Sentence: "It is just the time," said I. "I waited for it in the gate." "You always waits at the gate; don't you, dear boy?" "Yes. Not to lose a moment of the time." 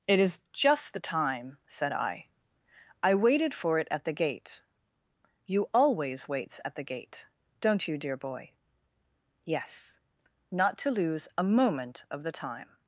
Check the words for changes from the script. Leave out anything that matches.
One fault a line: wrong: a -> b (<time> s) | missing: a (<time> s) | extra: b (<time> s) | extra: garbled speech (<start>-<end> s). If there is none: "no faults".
wrong: in -> at (3.9 s)